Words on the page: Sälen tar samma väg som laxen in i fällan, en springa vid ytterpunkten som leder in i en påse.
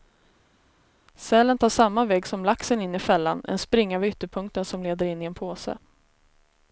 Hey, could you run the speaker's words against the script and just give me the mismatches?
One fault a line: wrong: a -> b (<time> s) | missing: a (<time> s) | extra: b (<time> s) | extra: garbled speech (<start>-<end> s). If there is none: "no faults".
no faults